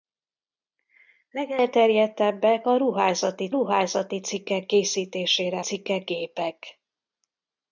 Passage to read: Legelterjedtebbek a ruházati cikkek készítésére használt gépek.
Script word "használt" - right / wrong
wrong